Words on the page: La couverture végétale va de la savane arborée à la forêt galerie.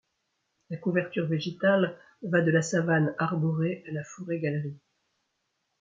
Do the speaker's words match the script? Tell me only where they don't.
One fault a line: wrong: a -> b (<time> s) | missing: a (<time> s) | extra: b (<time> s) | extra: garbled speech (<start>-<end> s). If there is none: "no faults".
no faults